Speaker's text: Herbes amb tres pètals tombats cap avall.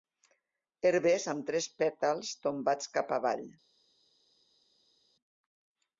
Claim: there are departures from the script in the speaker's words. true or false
false